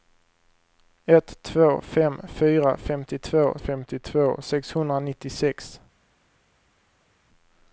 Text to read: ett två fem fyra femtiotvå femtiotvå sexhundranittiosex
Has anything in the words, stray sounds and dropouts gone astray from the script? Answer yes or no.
no